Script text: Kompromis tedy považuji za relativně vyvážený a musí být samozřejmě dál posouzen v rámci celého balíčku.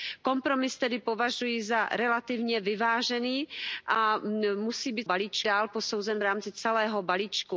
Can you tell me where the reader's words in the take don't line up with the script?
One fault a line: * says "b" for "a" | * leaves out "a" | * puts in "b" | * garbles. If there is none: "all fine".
* says "balíčku" for "samozřejmě"